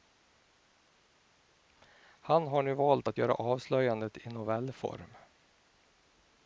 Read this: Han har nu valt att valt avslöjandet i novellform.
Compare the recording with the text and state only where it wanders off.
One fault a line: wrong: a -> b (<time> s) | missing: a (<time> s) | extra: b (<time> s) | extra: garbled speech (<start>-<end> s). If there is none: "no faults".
wrong: valt -> göra (3.2 s)